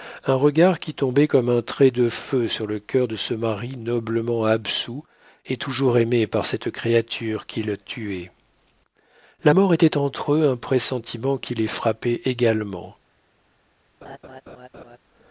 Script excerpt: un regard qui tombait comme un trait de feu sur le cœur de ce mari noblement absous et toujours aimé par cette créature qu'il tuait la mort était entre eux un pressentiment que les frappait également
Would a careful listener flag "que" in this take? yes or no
yes